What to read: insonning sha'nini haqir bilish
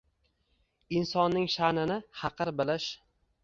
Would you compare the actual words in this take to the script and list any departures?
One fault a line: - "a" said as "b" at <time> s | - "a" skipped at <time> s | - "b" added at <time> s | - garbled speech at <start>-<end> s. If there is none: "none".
none